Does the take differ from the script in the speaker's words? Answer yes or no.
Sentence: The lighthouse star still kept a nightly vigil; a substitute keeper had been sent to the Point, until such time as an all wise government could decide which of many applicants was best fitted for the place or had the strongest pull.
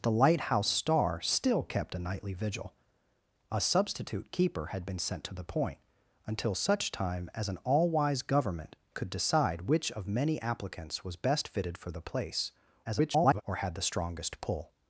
yes